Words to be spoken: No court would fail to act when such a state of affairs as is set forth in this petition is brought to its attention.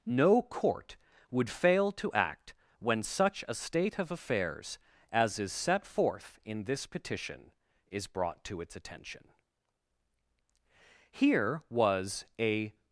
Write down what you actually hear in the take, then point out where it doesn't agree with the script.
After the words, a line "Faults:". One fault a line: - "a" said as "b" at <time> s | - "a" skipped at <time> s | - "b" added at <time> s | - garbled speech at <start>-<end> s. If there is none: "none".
No court would fail to act when such a state of affairs as is set forth in this petition is brought to its attention. "Here was a
Faults:
- "Here was a" added at 11.1 s